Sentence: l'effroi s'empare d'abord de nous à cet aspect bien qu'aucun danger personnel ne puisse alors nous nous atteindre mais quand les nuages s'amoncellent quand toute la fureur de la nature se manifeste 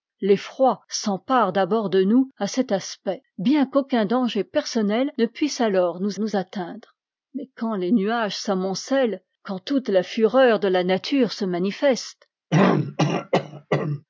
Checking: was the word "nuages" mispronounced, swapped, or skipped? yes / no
no